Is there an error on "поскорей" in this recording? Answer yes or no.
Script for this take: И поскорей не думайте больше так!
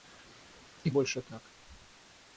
yes